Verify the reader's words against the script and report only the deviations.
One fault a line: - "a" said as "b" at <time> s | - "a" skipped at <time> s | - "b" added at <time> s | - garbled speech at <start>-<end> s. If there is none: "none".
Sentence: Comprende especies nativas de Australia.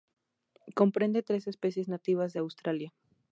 - "tres" added at 1.2 s